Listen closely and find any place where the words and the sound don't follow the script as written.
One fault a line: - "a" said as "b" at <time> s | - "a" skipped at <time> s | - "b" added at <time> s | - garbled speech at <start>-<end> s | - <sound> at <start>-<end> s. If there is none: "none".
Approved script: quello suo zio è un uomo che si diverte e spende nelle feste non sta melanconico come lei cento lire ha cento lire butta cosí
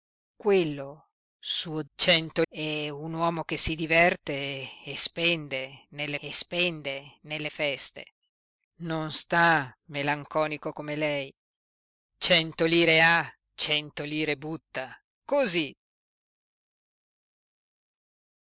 - "zio" said as "cento" at 2.0 s
- "e spende nelle" added at 6.2 s